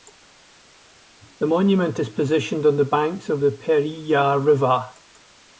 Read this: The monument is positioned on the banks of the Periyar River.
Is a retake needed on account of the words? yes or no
no